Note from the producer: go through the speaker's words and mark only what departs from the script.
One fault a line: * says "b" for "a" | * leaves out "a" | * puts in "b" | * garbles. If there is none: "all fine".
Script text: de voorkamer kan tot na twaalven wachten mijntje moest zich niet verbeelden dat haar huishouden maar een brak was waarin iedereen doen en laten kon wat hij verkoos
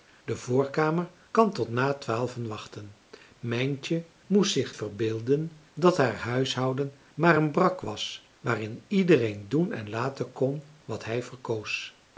* leaves out "niet"